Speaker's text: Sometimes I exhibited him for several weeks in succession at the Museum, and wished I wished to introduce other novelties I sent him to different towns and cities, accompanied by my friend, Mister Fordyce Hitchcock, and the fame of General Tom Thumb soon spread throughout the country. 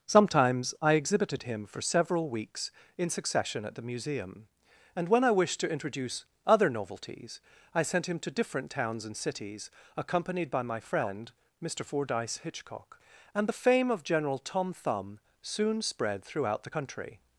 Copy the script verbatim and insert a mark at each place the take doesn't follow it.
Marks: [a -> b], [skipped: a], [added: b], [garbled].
Sometimes I exhibited him for several weeks in succession at the Museum, and [wished -> when] I wished to introduce other novelties I sent him to different towns and cities, accompanied by my friend, Mister Fordyce Hitchcock, and the fame of General Tom Thumb soon spread throughout the country.